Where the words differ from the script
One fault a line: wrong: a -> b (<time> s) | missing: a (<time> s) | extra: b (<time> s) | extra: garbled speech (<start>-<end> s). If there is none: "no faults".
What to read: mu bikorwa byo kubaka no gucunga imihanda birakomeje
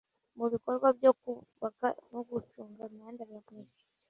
no faults